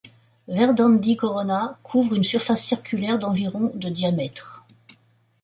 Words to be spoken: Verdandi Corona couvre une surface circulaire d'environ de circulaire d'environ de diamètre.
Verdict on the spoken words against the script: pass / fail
fail